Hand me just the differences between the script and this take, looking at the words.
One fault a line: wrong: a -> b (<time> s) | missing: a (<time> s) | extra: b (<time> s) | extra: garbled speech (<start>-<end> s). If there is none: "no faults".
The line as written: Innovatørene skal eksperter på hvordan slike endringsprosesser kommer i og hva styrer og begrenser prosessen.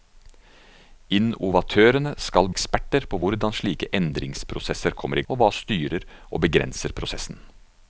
no faults